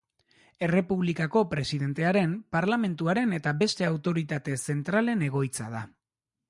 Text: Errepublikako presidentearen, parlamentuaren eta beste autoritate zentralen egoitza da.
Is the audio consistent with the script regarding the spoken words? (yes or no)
yes